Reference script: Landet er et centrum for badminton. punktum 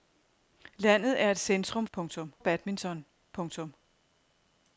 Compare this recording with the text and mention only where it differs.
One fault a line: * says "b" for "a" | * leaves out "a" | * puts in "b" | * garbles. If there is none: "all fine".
* says "punktum" for "for"